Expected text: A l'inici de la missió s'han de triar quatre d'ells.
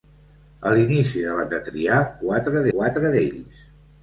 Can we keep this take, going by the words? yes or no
no